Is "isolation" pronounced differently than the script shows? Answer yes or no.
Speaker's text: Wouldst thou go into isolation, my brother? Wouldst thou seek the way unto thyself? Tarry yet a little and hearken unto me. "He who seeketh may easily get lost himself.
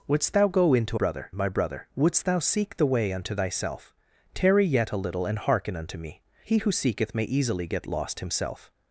yes